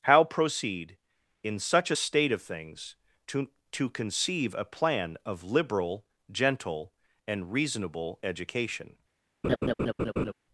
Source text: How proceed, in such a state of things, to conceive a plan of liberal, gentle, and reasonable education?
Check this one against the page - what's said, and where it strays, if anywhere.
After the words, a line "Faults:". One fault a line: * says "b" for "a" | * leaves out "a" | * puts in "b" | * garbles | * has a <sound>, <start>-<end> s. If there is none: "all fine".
How proceed, in such a state of things, to to conceive a plan of liberal, gentle, and reasonable education?
Faults:
* puts in "to"
* has a laugh, 9.4-10.3 s